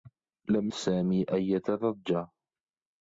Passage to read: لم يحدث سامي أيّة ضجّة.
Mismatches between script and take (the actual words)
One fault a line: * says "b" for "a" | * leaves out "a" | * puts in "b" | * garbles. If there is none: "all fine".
* leaves out "يحدث"